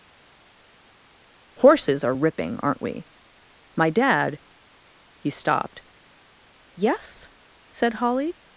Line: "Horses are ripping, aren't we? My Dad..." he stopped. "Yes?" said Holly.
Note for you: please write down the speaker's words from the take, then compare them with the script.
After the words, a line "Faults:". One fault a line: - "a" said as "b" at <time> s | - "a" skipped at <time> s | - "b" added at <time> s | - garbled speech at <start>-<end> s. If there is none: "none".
"Horses are ripping, aren't we? My Dad..." he stopped. "Yes?" said Holly.
Faults:
none